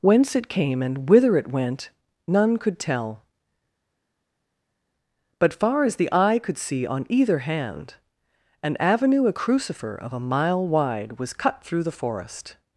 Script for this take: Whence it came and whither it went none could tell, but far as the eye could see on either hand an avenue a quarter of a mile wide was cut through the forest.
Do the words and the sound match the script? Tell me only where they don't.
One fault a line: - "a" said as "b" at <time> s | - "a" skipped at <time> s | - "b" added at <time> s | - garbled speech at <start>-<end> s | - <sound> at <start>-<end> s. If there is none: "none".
- "quarter" said as "crucifer" at 9.3 s